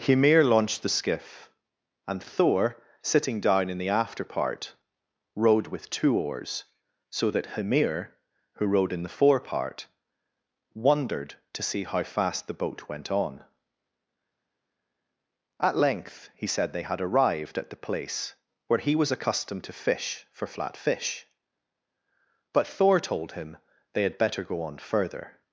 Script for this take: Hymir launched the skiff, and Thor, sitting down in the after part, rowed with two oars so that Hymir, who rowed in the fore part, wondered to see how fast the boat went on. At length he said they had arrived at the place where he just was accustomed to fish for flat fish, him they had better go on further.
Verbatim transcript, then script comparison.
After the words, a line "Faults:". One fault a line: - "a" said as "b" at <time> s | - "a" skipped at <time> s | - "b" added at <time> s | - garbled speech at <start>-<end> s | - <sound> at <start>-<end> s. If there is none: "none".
Hymir launched the skiff, and Thor, sitting down in the after part, rowed with two oars so that Hymir, who rowed in the fore part, wondered to see how fast the boat went on. At length he said they had arrived at the place where he was accustomed to fish for flat fish, but Thor told him they had better go on further.
Faults:
- "just" skipped at 18.9 s
- "but Thor told" added at 22.5 s